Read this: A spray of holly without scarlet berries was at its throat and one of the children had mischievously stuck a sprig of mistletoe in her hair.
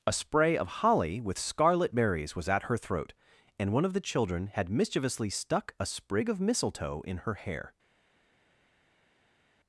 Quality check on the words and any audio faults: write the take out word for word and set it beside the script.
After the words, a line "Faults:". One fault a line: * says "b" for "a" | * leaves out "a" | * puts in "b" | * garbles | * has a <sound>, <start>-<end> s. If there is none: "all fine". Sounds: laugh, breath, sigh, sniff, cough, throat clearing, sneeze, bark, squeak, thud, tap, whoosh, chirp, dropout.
A spray of holly with scarlet berries was at her throat and one of the children had mischievously stuck a sprig of mistletoe in her hair.
Faults:
* says "with" for "without"
* says "her" for "its"